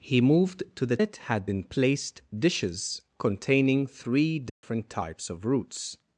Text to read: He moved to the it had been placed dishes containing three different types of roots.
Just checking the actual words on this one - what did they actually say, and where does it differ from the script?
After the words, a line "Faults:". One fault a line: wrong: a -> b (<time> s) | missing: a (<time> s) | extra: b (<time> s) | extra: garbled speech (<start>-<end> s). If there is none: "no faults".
He moved to the it had been placed dishes containing three different types of roots.
Faults:
no faults